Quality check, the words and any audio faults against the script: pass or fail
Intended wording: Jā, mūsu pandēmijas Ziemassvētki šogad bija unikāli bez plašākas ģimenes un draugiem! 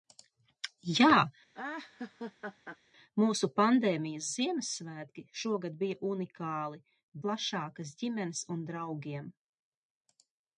fail